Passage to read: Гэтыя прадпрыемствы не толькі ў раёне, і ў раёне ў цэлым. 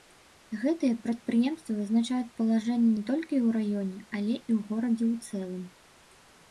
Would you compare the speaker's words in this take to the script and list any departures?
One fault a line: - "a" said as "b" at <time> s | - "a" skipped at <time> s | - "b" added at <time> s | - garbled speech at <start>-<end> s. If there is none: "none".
- "вызначаюць палажэнне" added at 1.8 s
- "але" added at 4.2 s
- "раёне" said as "горадзе" at 4.7 s